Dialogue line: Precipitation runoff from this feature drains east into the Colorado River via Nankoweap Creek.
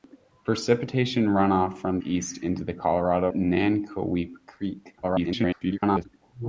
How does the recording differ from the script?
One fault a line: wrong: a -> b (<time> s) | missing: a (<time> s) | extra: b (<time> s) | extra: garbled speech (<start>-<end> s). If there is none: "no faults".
missing: this feature drains (2.0 s)
missing: River via (3.3 s)
extra: garbled speech (5.0-6.0 s)